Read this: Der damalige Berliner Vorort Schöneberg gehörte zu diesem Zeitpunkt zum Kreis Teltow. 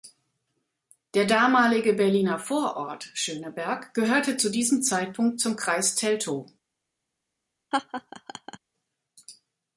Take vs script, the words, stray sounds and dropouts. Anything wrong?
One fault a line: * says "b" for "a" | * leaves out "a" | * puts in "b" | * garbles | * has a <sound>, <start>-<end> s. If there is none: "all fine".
* has a laugh, 7.7-8.6 s